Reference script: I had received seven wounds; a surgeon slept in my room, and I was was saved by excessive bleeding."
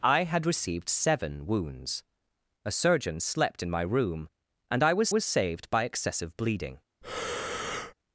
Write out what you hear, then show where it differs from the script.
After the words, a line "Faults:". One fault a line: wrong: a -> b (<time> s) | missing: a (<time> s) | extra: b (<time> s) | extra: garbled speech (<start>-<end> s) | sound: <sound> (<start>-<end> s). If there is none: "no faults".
I had received seven wounds; a surgeon slept in my room, and I was was saved by excessive bleeding."
Faults:
sound: breath (7.0-7.9 s)